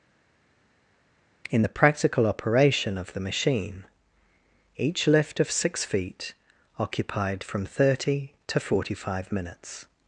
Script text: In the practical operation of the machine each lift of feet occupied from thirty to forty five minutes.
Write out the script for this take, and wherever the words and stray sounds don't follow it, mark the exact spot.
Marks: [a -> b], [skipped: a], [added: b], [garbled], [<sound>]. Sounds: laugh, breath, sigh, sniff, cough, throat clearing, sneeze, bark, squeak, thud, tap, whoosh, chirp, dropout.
In the practical operation of the machine each lift of [added: six] feet occupied from thirty to forty five minutes.